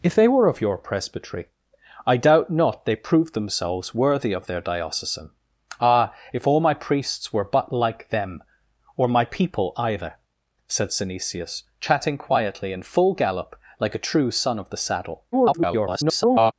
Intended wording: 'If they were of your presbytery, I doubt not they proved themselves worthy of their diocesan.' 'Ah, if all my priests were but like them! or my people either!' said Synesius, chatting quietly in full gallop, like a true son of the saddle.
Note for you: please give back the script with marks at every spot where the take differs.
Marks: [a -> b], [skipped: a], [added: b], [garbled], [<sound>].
'If they were of your presbytery, I doubt not they proved themselves worthy of their diocesan.' 'Ah, if all my priests were but like them! or my people either!' said Synesius, chatting quietly in full gallop, like a true son of the saddle. [garbled]